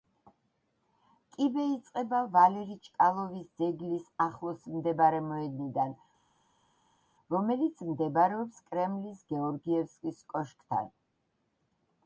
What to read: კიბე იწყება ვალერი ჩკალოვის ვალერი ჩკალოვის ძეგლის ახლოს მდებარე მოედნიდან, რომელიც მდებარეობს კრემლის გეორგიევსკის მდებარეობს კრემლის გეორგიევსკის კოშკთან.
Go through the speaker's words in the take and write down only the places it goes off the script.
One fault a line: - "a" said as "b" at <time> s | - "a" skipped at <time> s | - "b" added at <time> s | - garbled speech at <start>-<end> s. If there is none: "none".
- "ვალერი ჩკალოვის" skipped at 3.5 s
- "მდებარეობს კრემლის გეორგიევსკის" skipped at 10.2 s